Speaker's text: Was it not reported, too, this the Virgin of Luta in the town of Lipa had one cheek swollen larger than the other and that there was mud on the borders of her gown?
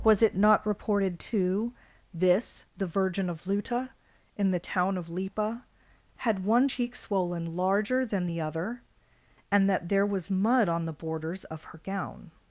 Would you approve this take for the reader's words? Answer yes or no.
yes